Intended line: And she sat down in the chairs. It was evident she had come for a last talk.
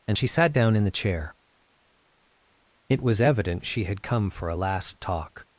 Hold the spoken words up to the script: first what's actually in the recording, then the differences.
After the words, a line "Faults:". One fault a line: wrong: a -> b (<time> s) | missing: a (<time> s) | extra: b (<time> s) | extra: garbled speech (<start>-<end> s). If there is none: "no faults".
And she sat down in the chair. It was evident she had come for a last talk.
Faults:
wrong: chairs -> chair (0.9 s)